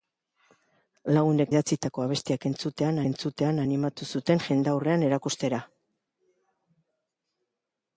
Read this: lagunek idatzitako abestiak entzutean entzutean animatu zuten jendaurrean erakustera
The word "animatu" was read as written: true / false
true